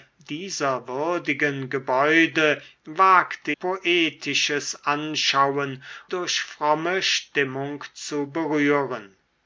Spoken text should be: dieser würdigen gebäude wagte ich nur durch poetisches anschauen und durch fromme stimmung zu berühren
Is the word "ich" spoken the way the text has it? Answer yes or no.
no